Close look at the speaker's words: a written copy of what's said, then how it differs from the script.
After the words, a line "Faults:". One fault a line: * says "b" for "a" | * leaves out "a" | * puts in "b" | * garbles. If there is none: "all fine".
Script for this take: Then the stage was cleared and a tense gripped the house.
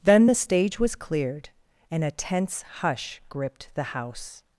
Then the stage was cleared and a tense hush gripped the house.
Faults:
* puts in "hush"